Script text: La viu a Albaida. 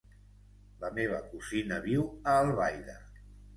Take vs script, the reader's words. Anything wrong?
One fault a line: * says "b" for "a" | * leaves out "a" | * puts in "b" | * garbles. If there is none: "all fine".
* puts in "meva cosina"